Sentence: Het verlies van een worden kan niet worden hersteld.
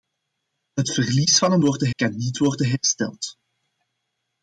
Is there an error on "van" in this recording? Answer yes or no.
no